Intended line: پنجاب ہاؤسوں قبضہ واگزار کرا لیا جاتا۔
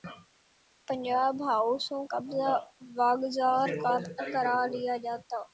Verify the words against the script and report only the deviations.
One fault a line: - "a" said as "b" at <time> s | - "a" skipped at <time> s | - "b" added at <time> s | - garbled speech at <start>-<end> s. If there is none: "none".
none